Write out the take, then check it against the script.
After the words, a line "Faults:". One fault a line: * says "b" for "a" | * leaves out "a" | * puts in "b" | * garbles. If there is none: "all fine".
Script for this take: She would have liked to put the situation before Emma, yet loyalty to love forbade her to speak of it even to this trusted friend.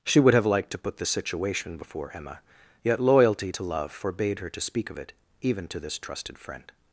She would have liked to put the situation before Emma, yet loyalty to love forbade her to speak of it even to this trusted friend.
Faults:
all fine